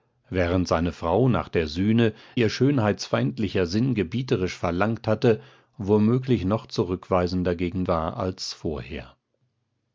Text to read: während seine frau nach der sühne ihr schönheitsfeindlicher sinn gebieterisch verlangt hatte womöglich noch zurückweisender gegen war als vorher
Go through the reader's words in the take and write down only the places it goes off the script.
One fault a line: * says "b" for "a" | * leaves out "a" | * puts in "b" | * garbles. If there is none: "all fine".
all fine